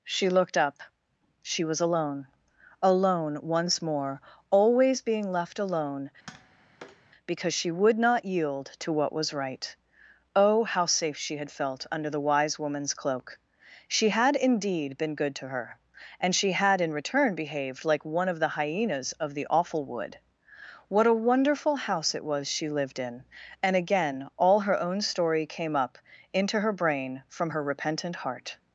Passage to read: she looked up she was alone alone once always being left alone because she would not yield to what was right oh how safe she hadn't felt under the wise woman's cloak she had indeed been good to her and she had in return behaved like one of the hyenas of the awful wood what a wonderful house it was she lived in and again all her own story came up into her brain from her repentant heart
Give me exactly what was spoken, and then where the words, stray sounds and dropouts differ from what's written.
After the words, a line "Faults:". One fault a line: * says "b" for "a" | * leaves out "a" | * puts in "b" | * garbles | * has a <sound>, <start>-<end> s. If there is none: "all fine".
she looked up she was alone alone once more always being left alone because she would not yield to what was right oh how safe she had felt under the wise woman's cloak she had indeed been good to her and she had in return behaved like one of the hyenas of the awful wood what a wonderful house it was she lived in and again all her own story came up into her brain from her repentant heart
Faults:
* puts in "more"
* has a tap, 6.3-7.1 s
* says "had" for "hadn't"